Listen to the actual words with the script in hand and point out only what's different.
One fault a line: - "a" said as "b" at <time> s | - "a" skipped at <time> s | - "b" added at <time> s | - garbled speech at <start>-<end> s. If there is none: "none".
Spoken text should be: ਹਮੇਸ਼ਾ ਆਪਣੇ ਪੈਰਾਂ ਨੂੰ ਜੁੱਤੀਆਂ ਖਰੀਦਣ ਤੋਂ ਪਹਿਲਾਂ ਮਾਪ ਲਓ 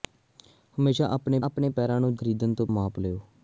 - "ਆਪਣੇ" added at 1.4 s
- "ਜੁੱਤੀਆਂ" skipped at 2.1 s
- "ਪਹਿਲਾਂ" skipped at 2.7 s